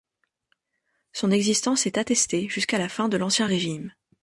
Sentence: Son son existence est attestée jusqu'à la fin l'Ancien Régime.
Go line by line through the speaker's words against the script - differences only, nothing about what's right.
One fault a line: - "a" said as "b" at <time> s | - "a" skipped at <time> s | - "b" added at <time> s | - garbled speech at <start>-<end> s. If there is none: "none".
- "son" skipped at 1.3 s
- "de" added at 3.1 s